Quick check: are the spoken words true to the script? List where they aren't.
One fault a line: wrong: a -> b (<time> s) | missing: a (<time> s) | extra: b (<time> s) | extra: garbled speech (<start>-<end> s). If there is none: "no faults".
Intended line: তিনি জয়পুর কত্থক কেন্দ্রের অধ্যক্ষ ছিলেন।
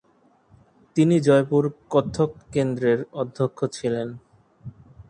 no faults